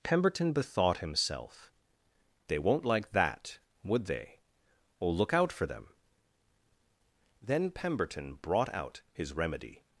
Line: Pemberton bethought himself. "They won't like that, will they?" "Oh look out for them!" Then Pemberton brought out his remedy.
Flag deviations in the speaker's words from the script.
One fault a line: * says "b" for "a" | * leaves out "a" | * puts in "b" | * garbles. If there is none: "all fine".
* says "would" for "will"